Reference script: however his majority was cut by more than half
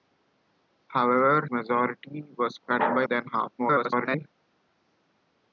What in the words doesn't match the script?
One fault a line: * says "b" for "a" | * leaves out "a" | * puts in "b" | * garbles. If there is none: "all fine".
* leaves out "his"
* leaves out "more"
* garbles